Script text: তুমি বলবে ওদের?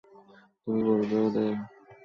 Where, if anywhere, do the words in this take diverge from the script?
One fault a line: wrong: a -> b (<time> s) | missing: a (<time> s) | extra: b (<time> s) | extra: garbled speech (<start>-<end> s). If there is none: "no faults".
no faults